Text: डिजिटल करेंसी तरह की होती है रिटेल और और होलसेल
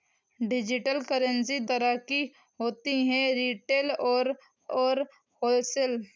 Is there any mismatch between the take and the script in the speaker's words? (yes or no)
no